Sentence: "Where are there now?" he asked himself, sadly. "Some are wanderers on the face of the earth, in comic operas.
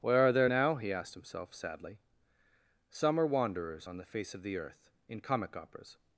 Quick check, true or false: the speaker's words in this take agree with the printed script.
true